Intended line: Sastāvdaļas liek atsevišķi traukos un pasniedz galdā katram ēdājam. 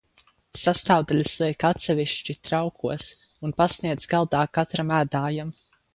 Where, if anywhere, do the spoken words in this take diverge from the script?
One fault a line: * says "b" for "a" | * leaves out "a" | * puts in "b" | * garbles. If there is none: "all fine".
all fine